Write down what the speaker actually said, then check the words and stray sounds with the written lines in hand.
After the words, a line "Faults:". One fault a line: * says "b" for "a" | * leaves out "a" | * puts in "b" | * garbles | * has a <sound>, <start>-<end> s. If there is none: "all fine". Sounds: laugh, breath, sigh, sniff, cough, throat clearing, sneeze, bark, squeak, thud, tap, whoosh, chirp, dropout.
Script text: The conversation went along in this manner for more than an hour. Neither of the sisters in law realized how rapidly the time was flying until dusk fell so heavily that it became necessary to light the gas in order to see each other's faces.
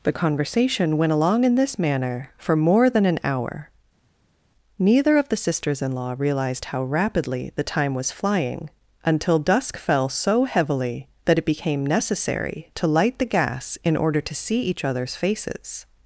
The conversation went along in this manner for more than an hour. Neither of the sisters in law realized how rapidly the time was flying until dusk fell so heavily that it became necessary to light the gas in order to see each other's faces.
Faults:
all fine